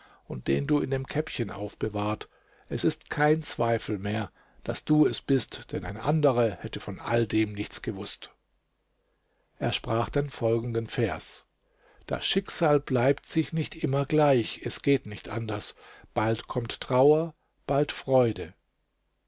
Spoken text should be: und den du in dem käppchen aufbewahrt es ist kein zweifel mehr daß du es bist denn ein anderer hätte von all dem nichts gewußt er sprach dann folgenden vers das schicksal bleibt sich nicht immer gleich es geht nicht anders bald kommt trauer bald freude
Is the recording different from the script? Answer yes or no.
no